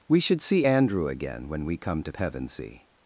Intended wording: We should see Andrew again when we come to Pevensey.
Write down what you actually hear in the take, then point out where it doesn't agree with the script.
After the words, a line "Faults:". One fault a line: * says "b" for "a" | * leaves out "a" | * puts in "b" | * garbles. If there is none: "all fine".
We should see Andrew again when we come to Pevensey.
Faults:
all fine